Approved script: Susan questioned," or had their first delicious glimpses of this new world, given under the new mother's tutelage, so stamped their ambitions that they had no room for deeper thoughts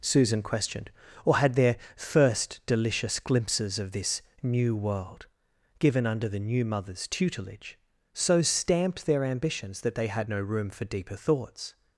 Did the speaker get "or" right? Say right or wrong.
right